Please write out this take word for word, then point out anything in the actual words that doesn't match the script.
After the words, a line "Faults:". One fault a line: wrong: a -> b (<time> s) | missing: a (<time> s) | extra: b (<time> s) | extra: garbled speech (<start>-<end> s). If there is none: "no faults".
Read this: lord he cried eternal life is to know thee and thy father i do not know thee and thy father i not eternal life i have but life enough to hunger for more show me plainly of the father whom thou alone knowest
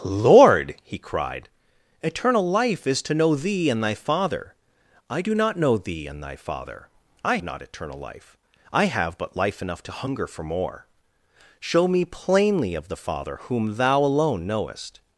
lord he cried eternal life is to know thee and thy father i do not know thee and thy father i not eternal life i have but life enough to hunger for more show me plainly of the father whom thou alone knowest
Faults:
no faults